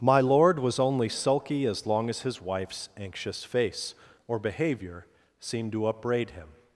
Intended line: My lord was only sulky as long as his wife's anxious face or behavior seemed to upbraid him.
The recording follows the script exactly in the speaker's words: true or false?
true